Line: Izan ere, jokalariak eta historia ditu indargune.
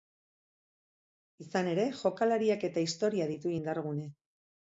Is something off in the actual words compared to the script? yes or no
no